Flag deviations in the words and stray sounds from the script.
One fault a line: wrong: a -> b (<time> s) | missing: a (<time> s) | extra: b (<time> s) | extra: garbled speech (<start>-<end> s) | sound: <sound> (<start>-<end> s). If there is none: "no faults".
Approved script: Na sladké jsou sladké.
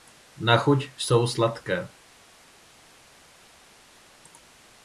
wrong: sladké -> chuť (0.6 s)